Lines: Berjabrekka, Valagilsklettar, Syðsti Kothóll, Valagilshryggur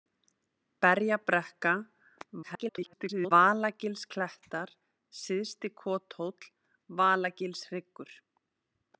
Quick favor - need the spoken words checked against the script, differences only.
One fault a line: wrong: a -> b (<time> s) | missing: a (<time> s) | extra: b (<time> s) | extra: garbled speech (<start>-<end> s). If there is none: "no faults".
extra: garbled speech (2.4-3.3 s)